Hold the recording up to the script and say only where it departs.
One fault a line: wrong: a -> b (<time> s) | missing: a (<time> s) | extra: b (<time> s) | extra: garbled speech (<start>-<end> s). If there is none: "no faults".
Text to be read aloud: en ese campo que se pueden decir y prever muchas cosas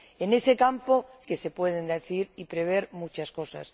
no faults